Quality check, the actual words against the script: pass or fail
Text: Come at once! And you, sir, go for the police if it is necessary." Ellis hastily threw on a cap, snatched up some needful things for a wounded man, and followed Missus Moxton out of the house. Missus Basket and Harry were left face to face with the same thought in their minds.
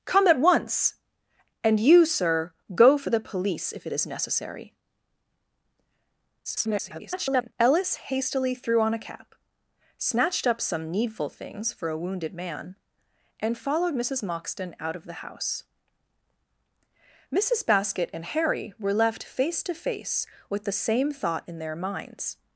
fail